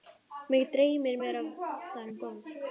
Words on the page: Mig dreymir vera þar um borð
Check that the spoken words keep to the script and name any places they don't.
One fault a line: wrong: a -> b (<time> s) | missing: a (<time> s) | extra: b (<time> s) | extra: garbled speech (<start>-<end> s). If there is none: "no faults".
no faults